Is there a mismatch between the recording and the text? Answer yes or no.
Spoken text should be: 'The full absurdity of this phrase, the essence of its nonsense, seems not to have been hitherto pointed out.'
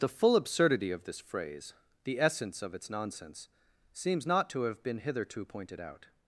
no